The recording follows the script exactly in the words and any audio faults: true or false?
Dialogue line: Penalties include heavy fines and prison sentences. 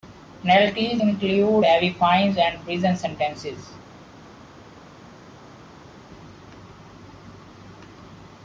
true